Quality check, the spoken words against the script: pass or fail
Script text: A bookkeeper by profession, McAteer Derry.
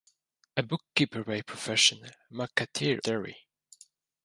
pass